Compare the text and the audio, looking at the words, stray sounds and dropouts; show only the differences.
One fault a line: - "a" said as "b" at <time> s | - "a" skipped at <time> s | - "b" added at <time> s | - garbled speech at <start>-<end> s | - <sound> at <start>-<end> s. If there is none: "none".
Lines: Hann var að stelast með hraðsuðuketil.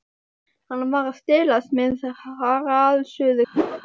- whoosh at 3.5-3.8 s